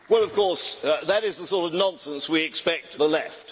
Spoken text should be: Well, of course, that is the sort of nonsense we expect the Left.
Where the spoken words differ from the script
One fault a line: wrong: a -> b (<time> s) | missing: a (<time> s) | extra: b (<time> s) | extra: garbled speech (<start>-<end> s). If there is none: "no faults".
no faults